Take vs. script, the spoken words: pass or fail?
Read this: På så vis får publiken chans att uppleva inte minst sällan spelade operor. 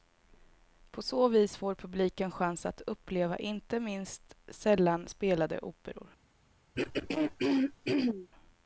pass